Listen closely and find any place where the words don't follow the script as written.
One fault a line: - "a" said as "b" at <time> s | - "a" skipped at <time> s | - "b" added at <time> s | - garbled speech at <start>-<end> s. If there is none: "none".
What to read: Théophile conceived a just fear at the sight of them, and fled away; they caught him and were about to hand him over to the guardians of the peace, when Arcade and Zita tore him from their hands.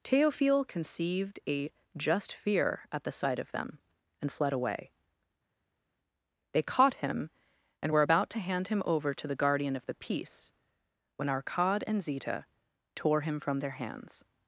- "guardians" said as "guardian" at 9.4 s